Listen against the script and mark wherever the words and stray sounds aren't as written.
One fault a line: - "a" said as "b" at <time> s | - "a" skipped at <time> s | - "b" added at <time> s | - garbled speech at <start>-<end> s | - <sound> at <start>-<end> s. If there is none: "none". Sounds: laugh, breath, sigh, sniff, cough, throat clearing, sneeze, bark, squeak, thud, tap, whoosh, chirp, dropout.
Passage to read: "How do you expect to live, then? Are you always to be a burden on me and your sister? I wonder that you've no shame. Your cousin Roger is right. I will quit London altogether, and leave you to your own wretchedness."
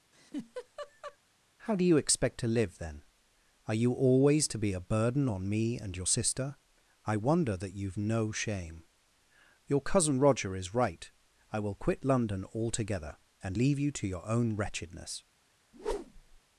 - laugh at 0.1-1.2 s
- whoosh at 15.7-16.4 s